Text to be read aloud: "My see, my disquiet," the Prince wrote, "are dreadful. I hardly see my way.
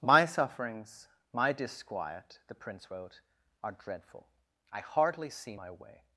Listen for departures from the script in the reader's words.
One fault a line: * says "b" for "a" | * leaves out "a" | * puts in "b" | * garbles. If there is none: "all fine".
* says "sufferings" for "see"